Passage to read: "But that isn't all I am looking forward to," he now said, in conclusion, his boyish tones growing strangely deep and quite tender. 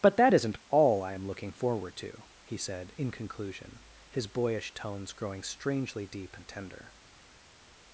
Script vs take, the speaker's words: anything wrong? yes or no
yes